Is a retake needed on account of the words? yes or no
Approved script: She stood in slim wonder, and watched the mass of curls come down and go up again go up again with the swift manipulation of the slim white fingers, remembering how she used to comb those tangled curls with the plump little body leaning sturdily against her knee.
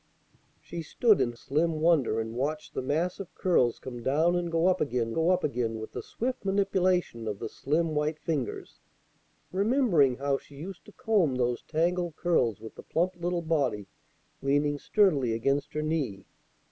no